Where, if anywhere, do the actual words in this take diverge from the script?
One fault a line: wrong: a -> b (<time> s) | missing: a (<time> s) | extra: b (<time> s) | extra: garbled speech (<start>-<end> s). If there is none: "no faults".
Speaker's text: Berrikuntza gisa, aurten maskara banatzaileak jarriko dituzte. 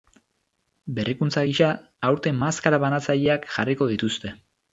no faults